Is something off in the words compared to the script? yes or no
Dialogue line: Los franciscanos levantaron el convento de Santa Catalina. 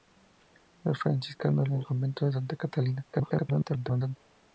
yes